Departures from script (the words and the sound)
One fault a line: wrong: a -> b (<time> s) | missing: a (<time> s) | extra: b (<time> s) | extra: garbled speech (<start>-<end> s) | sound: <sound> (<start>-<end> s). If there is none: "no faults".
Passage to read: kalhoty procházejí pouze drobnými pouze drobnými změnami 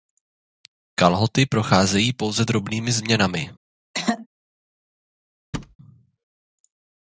missing: pouze drobnými (2.9 s)
sound: throat clearing (3.9-4.3 s)
sound: thud (5.5-5.8 s)